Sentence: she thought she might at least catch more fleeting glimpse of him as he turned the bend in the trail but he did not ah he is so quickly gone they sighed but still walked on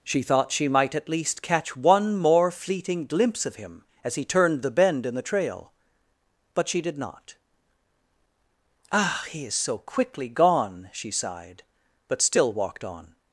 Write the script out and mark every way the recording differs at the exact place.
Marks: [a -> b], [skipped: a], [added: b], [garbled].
she thought she might at least catch [added: one] more fleeting glimpse of him as he turned the bend in the trail but [he -> she] did not ah he is so quickly gone [they -> she] sighed but still walked on